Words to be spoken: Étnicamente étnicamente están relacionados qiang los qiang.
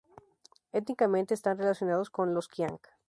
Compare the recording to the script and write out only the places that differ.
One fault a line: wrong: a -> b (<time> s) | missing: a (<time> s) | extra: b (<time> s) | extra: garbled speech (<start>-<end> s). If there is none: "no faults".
missing: étnicamente (1.3 s)
wrong: qiang -> con (2.1 s)